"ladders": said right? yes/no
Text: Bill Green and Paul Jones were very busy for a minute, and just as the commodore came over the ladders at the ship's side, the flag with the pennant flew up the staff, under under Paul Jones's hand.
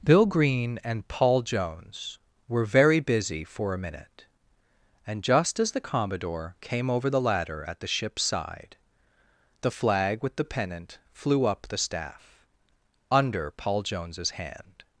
no